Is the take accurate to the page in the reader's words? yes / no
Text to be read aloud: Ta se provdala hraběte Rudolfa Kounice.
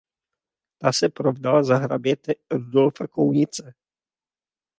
no